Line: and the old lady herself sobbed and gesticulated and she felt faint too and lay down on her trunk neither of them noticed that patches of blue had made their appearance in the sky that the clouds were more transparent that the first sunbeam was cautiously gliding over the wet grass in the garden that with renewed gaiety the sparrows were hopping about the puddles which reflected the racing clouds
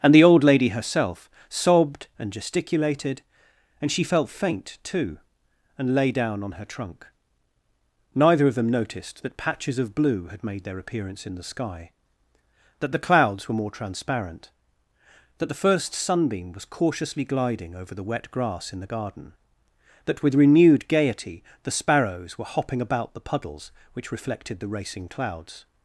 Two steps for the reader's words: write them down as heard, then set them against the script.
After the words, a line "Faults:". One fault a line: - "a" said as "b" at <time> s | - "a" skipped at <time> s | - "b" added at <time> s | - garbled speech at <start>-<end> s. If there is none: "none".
and the old lady herself sobbed and gesticulated and she felt faint too and lay down on her trunk neither of them noticed that patches of blue had made their appearance in the sky that the clouds were more transparent that the first sunbeam was cautiously gliding over the wet grass in the garden that with renewed gaiety the sparrows were hopping about the puddles which reflected the racing clouds
Faults:
none